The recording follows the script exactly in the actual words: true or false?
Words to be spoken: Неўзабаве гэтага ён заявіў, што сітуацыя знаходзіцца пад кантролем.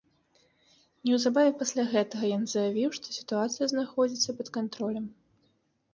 false